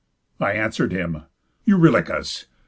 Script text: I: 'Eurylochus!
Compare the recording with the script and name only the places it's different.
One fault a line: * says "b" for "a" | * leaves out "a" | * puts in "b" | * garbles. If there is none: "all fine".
* puts in "answer'd him"